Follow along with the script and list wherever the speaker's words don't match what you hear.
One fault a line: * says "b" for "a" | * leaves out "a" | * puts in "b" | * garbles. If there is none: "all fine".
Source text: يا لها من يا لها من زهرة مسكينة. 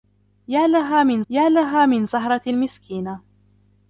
all fine